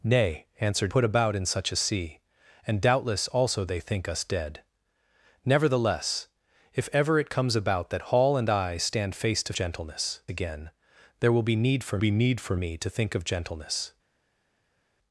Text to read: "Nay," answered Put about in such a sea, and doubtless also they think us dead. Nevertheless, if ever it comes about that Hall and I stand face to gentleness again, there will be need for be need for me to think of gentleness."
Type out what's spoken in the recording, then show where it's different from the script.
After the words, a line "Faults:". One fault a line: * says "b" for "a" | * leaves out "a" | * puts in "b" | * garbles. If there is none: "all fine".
"Nay," answered Put about in such a sea, and doubtless also they think us dead. Nevertheless, if ever it comes about that Hall and I stand face to gentleness again, there will be need for be need for me to think of gentleness."
Faults:
all fine